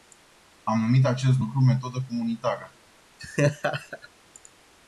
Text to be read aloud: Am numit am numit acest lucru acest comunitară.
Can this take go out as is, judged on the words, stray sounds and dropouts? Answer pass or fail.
fail